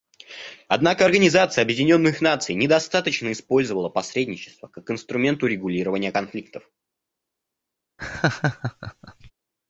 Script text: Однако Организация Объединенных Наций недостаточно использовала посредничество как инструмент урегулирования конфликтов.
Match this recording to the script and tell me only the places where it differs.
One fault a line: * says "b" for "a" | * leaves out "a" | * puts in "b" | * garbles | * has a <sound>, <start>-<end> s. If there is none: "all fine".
* has a laugh, 8.0-9.3 s